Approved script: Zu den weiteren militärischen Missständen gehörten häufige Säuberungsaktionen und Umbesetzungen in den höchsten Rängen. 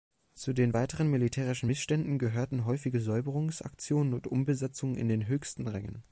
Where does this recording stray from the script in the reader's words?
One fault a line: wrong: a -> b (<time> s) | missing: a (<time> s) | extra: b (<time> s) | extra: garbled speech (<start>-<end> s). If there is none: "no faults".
no faults